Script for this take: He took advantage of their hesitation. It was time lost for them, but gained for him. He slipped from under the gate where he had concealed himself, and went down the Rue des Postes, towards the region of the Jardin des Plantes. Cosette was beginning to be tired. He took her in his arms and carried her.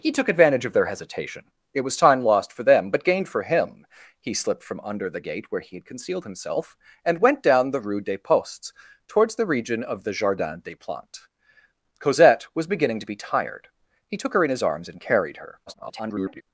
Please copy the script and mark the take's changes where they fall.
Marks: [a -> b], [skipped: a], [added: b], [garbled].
He took advantage of their hesitation. It was time lost for them, but gained for him. He slipped from under the gate where he had concealed himself, and went down the Rue des Postes, towards the region of the Jardin des Plantes. Cosette was beginning to be tired. He took her in his arms and carried her. [garbled]